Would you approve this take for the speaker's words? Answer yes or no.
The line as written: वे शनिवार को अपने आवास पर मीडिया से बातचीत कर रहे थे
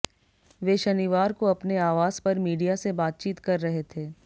yes